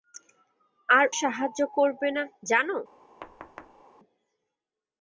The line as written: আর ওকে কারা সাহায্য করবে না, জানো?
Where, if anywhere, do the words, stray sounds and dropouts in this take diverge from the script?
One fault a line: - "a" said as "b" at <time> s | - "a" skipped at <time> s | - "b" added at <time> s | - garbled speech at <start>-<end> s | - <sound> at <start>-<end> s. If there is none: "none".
- "ওকে কারা" skipped at 1.1 s
- thud at 3.2-3.8 s